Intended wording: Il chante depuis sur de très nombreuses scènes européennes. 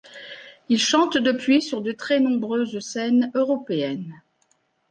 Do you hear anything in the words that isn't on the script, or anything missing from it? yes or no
no